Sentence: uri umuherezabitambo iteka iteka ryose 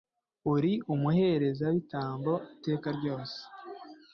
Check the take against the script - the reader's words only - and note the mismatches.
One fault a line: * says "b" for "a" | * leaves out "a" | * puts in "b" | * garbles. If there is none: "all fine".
* leaves out "iteka"